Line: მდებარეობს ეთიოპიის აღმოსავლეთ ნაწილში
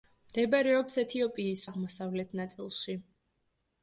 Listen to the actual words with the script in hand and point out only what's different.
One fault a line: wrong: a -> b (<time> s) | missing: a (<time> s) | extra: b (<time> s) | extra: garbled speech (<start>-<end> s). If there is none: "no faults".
no faults